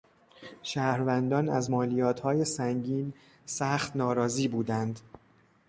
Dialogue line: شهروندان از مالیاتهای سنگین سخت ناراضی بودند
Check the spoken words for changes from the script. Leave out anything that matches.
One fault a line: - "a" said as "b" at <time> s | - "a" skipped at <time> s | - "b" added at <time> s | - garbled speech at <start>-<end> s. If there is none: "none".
none